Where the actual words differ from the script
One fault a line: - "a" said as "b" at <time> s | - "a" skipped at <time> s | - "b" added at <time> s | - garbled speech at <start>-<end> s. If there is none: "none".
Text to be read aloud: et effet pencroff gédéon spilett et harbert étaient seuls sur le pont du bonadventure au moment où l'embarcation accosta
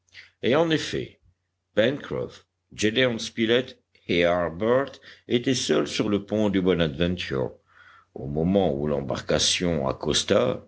- "en" added at 0.6 s